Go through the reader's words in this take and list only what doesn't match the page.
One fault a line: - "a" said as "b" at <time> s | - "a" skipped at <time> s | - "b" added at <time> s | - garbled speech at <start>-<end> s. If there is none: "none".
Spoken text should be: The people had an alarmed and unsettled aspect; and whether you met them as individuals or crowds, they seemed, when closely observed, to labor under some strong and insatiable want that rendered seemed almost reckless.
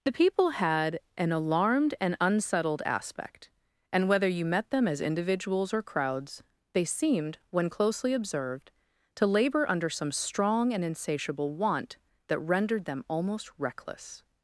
- "seemed" said as "them" at 12.8 s